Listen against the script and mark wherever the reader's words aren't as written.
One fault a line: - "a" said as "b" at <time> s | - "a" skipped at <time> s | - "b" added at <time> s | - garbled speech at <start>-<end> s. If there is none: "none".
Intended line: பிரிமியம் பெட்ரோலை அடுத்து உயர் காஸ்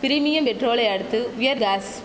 none